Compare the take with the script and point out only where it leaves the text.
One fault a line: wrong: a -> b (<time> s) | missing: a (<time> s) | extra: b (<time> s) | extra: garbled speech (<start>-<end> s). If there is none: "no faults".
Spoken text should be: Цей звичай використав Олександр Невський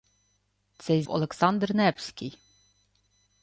missing: звичай використав (1.0 s)